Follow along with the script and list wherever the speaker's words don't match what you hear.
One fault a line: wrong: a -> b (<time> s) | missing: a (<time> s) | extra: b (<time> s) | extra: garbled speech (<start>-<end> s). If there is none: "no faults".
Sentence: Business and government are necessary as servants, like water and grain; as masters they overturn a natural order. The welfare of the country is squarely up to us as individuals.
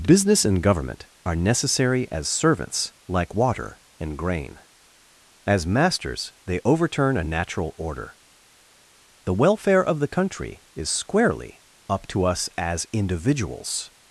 no faults